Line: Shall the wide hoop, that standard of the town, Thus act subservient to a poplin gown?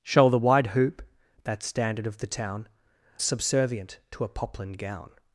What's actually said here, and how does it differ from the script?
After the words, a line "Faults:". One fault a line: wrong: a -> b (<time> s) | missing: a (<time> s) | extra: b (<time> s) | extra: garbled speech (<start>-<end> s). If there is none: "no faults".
Shall the wide hoop, that standard of the town, Subservient to a poplin gown?
Faults:
missing: Thus act (2.7 s)